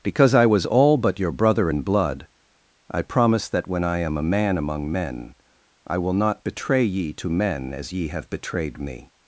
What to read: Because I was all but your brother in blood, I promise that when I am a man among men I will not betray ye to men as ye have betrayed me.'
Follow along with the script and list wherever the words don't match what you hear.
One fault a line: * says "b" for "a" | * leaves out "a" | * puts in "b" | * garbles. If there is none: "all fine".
all fine